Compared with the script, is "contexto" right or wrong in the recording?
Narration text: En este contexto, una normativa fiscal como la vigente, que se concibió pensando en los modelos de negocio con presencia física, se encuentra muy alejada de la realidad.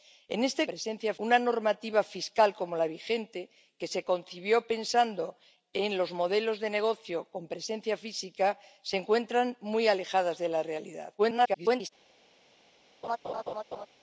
wrong